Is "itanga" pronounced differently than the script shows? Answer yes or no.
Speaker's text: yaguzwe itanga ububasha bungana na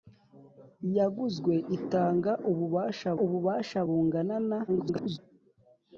no